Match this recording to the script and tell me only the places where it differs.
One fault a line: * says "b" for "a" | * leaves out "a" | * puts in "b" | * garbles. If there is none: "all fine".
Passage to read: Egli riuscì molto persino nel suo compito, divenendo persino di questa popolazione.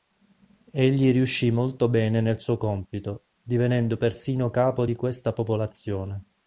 * says "bene" for "persino"
* puts in "capo"